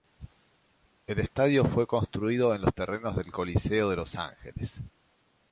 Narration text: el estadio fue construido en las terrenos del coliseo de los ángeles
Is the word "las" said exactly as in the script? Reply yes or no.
no